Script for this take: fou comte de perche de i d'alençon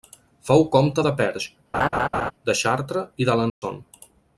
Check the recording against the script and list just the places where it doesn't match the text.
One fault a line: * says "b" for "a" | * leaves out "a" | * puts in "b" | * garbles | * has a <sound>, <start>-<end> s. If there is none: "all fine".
* has a laugh, 1.7-2.3 s
* puts in "chartres"
* has a dropout, 3.5-3.6 s